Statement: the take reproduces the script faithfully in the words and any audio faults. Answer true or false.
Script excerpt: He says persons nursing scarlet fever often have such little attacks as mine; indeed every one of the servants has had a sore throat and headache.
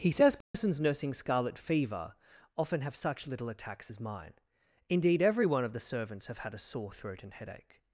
false